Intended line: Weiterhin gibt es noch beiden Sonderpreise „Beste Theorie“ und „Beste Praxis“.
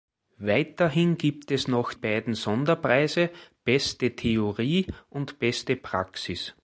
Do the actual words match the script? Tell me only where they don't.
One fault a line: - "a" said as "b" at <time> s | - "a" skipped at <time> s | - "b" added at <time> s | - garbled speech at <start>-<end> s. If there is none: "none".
none